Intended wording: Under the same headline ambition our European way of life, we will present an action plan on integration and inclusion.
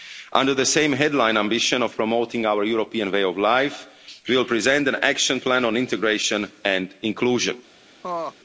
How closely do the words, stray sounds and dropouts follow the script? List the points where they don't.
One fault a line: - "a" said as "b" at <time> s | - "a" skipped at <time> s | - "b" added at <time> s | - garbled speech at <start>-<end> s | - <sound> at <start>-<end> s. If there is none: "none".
- "of promoting" added at 1.8 s
- laugh at 8.0-8.3 s